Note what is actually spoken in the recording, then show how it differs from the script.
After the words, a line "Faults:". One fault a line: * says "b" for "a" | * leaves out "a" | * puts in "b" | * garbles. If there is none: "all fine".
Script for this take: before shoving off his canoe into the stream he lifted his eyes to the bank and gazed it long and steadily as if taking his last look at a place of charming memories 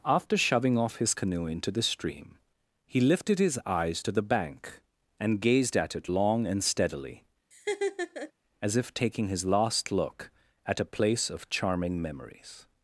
after shoving off his canoe into the stream he lifted his eyes to the bank and gazed at it long and steadily as if taking his last look at a place of charming memories
Faults:
* says "after" for "before"
* puts in "at"